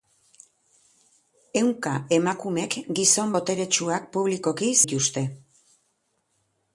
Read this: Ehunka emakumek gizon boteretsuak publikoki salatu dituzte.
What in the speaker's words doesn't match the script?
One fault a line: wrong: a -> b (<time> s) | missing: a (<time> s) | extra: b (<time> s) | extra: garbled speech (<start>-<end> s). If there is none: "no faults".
missing: salatu (4.7 s)